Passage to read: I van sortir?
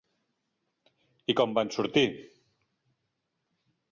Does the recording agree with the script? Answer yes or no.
no